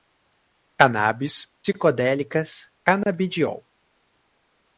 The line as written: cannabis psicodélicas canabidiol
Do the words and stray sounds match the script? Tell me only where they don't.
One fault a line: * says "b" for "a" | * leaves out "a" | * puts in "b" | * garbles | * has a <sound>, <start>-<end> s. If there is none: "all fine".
all fine